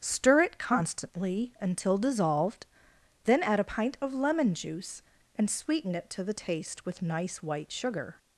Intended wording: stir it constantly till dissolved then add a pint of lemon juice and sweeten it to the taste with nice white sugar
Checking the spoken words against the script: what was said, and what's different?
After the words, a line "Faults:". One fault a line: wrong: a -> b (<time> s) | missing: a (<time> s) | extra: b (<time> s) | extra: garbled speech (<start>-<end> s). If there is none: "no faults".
stir it constantly until dissolved then add a pint of lemon juice and sweeten it to the taste with nice white sugar
Faults:
wrong: till -> until (1.6 s)